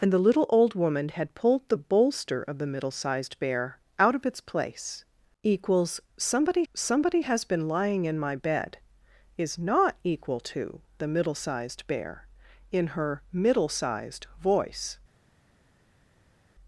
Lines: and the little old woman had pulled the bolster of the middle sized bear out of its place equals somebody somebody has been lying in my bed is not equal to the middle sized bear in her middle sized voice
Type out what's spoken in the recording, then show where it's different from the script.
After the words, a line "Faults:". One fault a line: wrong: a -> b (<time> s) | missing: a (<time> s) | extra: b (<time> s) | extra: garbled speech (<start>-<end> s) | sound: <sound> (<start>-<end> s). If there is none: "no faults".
and the little old woman had pulled the bolster of the middle sized bear out of its place equals somebody somebody has been lying in my bed is not equal to the middle sized bear in her middle sized voice
Faults:
no faults